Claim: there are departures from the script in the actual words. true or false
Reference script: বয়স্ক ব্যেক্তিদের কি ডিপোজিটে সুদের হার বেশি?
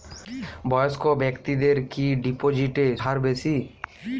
true